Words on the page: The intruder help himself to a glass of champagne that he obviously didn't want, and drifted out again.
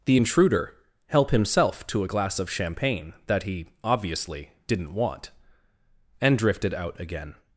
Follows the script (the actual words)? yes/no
yes